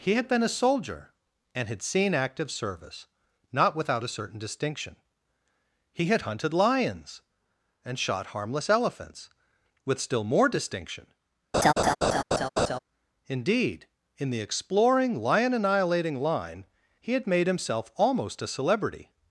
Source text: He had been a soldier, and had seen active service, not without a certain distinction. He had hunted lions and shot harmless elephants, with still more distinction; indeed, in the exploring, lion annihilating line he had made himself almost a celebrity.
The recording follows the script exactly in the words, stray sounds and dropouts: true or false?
false